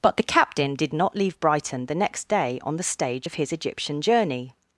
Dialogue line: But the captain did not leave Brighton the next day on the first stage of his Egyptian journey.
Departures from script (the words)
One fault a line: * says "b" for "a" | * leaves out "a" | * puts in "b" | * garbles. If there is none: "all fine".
* leaves out "first"